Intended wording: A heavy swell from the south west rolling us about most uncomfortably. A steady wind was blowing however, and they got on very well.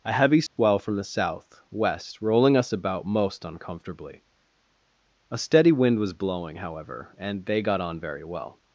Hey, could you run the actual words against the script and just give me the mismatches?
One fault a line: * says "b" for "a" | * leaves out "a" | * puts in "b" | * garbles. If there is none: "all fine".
all fine